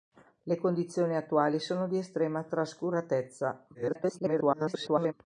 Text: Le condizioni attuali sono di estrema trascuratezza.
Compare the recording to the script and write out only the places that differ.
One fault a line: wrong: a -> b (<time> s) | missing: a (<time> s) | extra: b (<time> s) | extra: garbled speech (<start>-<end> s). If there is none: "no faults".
extra: garbled speech (3.7-5.1 s)